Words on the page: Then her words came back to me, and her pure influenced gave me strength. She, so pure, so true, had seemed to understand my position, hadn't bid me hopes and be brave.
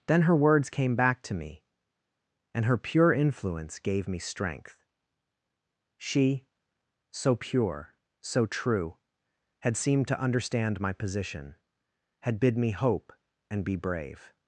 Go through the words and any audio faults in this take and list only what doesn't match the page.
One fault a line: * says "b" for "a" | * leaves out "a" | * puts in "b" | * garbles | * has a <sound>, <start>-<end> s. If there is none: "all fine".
* says "influence" for "influenced"
* says "had" for "hadn't"
* says "hope" for "hopes"